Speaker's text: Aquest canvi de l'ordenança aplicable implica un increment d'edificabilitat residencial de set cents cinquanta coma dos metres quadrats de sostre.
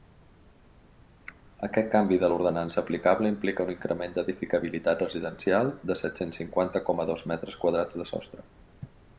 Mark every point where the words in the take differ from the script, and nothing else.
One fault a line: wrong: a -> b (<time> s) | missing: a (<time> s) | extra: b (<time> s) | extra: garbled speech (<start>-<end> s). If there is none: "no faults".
no faults